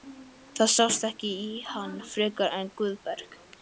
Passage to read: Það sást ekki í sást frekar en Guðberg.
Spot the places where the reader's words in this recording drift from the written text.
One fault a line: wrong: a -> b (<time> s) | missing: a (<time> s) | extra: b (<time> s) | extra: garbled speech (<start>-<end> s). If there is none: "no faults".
wrong: sást -> hann (1.7 s)